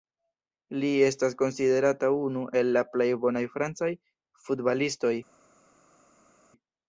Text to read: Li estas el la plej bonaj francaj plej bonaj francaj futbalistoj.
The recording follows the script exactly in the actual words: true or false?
false